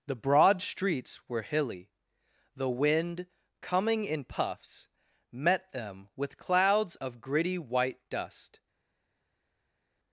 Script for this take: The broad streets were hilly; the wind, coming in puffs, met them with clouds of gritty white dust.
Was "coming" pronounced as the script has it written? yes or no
yes